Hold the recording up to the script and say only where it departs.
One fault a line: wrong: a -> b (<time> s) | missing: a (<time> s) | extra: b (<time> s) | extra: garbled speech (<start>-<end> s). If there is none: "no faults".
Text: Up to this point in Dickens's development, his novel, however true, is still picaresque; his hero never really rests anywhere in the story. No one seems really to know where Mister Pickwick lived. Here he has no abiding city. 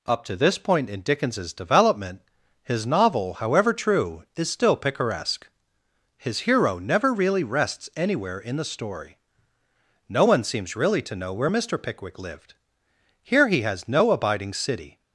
no faults